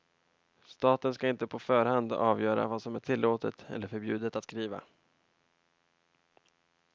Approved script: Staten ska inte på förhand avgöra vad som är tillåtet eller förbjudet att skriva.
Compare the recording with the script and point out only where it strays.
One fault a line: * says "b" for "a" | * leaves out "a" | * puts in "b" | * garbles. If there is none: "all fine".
all fine